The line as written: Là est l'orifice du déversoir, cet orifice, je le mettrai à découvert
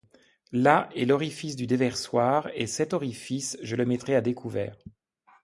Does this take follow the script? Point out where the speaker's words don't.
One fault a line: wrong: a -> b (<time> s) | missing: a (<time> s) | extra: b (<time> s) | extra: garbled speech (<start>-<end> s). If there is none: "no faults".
extra: et (2.5 s)